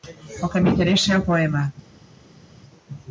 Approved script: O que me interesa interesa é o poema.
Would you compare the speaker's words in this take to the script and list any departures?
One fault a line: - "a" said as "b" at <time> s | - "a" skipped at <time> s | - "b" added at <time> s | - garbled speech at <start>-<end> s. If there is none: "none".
- "interesa" skipped at 1.1 s